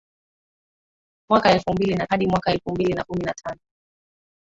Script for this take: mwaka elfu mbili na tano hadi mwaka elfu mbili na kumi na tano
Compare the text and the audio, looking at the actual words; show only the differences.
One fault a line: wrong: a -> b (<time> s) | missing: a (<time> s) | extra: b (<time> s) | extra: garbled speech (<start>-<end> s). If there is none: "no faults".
missing: tano (2.1 s)